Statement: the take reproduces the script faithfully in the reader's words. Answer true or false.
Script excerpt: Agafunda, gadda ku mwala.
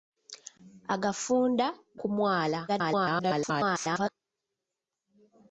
false